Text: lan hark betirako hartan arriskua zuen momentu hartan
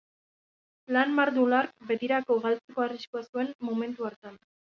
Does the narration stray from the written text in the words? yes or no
yes